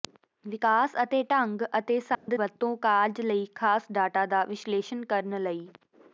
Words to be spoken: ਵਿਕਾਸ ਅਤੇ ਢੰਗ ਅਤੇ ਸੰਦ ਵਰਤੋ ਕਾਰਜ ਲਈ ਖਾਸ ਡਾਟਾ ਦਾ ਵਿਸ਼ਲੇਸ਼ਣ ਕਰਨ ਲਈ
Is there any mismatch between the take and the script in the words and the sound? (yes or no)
yes